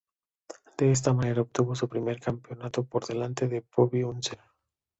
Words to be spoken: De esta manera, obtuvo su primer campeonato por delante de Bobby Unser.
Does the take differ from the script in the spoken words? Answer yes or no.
no